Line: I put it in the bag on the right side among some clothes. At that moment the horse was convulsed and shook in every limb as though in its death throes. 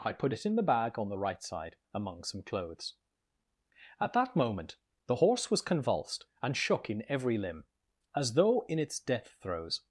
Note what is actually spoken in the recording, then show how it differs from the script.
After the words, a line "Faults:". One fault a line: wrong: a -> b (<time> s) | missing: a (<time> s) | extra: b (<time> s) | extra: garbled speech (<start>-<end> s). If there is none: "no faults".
I put it in the bag on the right side among some clothes. At that moment the horse was convulsed and shook in every limb as though in its death throes.
Faults:
no faults